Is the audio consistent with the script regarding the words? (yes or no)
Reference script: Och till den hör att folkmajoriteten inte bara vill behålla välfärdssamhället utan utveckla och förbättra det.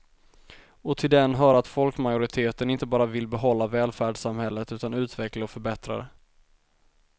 yes